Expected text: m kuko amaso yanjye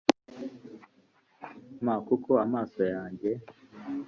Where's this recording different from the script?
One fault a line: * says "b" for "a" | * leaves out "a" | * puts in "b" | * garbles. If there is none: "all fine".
all fine